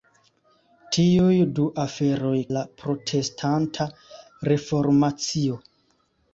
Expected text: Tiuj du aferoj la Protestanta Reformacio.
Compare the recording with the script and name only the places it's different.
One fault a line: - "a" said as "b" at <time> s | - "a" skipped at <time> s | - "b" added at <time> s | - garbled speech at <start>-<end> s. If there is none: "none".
none